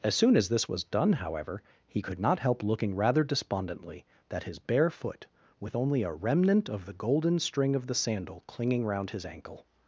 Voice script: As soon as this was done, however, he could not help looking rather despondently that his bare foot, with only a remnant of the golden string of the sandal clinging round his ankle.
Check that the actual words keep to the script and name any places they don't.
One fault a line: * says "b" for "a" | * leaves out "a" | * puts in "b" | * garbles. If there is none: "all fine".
all fine